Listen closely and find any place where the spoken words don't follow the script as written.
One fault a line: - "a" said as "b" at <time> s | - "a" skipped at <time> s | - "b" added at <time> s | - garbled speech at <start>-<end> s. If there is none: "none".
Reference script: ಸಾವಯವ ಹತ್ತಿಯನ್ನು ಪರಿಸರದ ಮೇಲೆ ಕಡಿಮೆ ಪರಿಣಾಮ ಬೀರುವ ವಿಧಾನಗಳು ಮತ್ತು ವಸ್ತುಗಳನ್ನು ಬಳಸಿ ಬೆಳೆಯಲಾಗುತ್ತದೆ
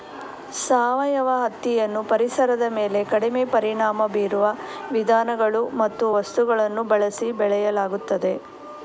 none